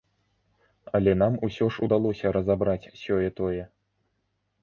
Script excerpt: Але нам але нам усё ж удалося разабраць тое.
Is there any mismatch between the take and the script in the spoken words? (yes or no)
yes